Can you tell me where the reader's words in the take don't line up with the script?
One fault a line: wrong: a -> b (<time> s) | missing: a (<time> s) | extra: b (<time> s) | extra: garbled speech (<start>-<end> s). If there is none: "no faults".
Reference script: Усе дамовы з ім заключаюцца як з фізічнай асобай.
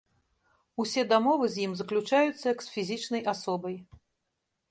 no faults